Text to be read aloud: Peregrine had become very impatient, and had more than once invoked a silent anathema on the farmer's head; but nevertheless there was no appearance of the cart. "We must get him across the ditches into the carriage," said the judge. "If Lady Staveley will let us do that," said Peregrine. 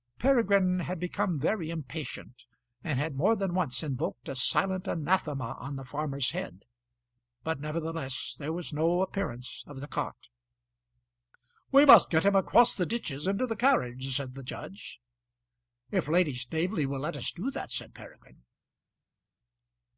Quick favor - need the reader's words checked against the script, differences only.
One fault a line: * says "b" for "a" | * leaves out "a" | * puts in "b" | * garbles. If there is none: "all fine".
all fine